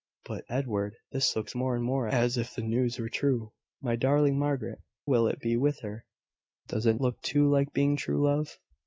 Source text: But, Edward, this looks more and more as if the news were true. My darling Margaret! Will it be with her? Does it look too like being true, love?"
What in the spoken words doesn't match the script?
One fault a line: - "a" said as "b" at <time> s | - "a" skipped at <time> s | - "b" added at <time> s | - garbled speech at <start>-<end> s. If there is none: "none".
none